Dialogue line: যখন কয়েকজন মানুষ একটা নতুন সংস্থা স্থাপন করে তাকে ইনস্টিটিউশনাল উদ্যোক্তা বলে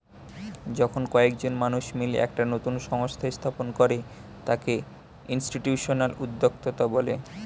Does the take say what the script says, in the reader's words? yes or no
no